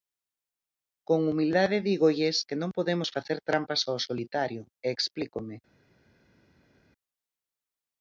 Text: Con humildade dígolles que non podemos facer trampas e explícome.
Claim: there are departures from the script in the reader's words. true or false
true